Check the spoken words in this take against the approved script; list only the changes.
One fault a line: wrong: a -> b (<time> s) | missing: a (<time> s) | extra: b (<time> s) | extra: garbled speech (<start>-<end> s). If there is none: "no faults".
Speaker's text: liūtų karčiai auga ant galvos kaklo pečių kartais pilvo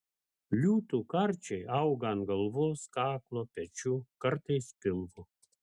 no faults